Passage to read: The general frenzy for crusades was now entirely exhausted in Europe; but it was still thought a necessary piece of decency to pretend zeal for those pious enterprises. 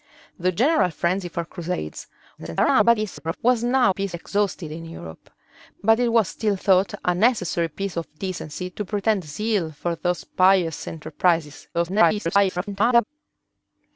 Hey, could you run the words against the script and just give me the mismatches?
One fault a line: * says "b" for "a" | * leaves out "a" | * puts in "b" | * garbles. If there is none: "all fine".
* garbles
* says "piece" for "entirely"
* garbles